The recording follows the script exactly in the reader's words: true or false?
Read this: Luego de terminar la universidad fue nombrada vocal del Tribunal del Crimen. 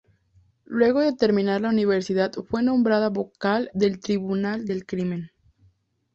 true